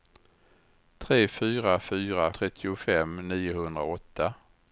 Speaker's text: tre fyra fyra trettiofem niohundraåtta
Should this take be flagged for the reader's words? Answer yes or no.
no